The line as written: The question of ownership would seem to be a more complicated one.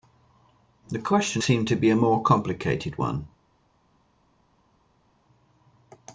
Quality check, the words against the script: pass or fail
fail